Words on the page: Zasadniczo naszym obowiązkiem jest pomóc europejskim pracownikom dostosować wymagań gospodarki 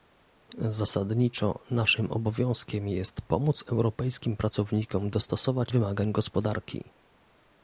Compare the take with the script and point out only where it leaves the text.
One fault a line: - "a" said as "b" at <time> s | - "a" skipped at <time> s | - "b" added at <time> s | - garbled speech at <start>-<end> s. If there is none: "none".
none